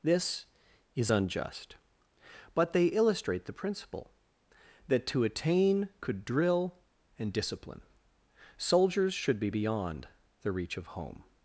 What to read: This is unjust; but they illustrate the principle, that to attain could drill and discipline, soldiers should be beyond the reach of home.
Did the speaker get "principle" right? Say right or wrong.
right